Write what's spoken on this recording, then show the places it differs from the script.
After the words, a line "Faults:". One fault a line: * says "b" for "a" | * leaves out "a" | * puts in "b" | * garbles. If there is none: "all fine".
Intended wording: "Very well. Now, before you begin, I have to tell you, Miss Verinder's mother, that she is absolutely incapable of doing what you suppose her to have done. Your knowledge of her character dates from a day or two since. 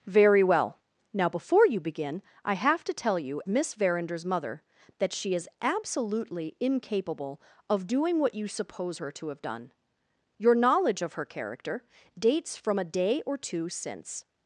"Very well. Now, before you begin, I have to tell you, Miss Verinder's mother, that she is absolutely incapable of doing what you suppose her to have done. Your knowledge of her character dates from a day or two since.
Faults:
all fine